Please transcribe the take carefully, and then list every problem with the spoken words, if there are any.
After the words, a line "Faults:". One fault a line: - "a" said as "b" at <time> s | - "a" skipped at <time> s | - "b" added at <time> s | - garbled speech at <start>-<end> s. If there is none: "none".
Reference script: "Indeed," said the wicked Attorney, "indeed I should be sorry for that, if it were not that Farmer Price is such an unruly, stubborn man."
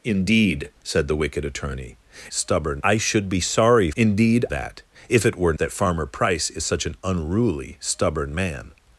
"Indeed," said the wicked Attorney, "stubborn I should be sorry indeed that, if it were that Farmer Price is such an unruly, stubborn man."
Faults:
- "indeed" said as "stubborn" at 2.3 s
- "for" said as "indeed" at 4.0 s
- "not" skipped at 5.5 s